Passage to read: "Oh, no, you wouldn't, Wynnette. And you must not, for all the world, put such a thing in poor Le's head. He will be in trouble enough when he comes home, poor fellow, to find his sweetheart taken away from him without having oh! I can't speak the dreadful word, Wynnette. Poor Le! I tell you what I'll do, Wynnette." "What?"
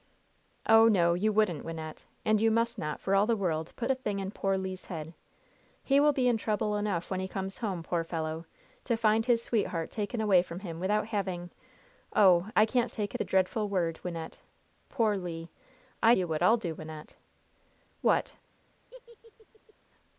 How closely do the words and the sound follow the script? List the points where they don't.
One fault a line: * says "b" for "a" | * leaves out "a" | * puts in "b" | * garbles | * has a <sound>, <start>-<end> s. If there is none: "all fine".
* leaves out "such"
* says "taken" for "speak"
* leaves out "tell"
* has a laugh, 18.9-19.7 s